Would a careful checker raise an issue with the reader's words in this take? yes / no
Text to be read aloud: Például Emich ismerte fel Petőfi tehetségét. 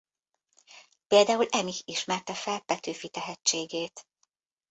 no